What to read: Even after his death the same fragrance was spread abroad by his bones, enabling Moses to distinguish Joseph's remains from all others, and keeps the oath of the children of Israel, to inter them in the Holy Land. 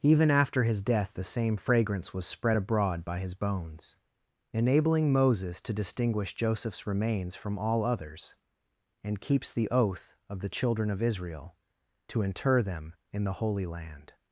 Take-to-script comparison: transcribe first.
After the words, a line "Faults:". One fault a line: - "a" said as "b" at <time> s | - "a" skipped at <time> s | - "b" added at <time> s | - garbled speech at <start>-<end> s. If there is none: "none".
Even after his death the same fragrance was spread abroad by his bones, enabling Moses to distinguish Joseph's remains from all others, and keeps the oath of the children of Israel, to inter them in the Holy Land.
Faults:
none